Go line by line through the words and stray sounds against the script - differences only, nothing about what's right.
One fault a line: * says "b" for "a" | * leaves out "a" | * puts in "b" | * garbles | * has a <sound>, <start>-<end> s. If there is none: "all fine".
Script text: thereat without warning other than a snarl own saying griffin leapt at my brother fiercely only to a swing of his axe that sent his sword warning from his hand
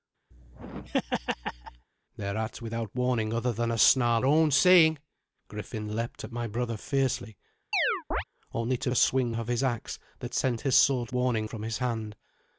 * has a laugh, 0.3-1.9 s
* has a chirp, 7.7-8.2 s